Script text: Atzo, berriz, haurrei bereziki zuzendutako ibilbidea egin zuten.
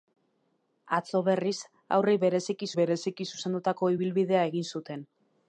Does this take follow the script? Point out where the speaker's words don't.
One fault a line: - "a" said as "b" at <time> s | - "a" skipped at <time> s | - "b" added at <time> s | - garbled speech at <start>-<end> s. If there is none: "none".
- "bereziki" added at 2.8 s